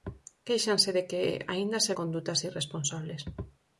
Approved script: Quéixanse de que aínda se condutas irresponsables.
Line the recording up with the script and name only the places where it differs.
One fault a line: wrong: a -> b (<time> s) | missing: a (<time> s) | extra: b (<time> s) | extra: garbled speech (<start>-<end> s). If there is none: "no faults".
no faults